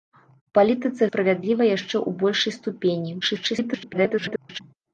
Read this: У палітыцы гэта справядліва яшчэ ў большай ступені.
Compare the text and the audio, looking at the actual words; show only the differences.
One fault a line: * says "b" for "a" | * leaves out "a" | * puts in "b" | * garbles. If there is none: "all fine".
* leaves out "гэта"
* garbles